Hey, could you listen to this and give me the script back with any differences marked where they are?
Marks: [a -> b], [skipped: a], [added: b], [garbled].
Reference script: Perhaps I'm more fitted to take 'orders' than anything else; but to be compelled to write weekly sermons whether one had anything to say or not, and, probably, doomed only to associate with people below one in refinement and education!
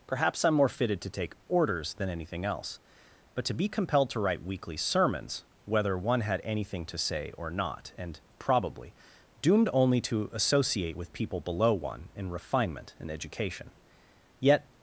Perhaps I'm more fitted to take 'orders' than anything else; but to be compelled to write weekly sermons whether one had anything to say or not, and, probably, doomed only to associate with people below one in refinement and education! [added: Yet]